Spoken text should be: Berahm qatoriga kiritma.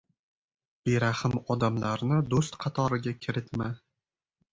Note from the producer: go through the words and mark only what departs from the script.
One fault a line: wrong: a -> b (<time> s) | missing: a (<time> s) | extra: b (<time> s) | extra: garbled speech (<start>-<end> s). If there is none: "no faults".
extra: odamlarni do‘st (1.6 s)